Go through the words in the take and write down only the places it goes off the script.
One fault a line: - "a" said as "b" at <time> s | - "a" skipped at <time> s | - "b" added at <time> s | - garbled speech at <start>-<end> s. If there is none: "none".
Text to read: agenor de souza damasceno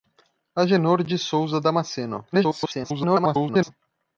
- garbled speech at 2.3-3.7 s